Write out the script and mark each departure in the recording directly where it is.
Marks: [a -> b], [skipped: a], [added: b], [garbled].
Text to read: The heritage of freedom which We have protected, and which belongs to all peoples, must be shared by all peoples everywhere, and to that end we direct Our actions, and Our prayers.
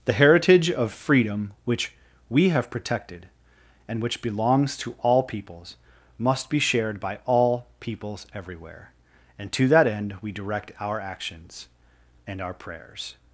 The heritage of freedom which We have protected, and which belongs to all peoples, must be shared by all peoples everywhere, and to that end we direct Our actions, and Our prayers.